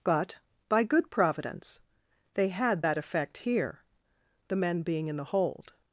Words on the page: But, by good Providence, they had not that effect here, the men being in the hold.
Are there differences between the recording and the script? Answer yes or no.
yes